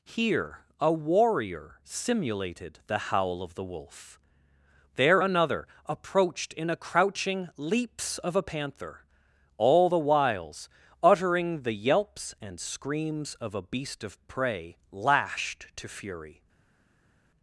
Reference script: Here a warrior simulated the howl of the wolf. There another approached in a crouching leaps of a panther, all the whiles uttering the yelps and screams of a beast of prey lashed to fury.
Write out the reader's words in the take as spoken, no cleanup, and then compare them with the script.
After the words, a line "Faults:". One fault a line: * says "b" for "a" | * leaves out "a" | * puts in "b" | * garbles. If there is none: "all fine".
Here a warrior simulated the howl of the wolf. There another approached in a crouching leaps of a panther, all the whiles uttering the yelps and screams of a beast of prey lashed to fury.
Faults:
all fine